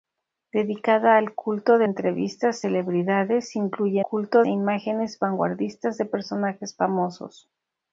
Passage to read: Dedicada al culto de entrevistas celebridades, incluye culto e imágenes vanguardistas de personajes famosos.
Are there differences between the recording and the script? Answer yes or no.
no